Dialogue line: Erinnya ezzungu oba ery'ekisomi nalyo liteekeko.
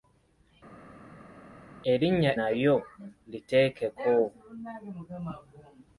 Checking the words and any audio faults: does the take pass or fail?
fail